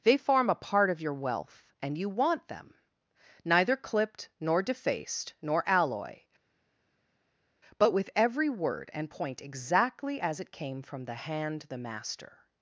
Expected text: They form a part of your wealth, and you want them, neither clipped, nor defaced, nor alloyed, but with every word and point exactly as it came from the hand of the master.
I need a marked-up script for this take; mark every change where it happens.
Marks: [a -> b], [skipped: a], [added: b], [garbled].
They form a part of your wealth, and you want them, neither clipped, nor defaced, nor [alloyed, -> alloy] but with every word and point exactly as it came from the hand [skipped: of] the master.